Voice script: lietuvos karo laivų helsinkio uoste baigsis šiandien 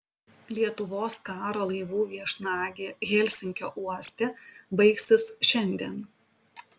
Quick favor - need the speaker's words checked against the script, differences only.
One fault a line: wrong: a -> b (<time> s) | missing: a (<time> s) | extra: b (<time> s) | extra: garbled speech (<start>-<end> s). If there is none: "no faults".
extra: viešnagė (2.1 s)